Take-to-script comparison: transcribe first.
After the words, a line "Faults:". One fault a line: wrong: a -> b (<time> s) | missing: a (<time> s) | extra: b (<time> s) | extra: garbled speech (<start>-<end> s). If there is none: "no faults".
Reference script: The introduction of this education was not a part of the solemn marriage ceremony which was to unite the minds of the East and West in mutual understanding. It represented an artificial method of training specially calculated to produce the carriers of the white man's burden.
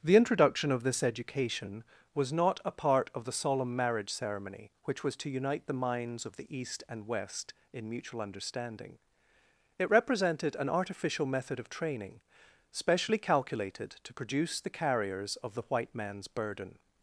The introduction of this education was not a part of the solemn marriage ceremony which was to unite the minds of the East and West in mutual understanding. It represented an artificial method of training specially calculated to produce the carriers of the white man's burden.
Faults:
no faults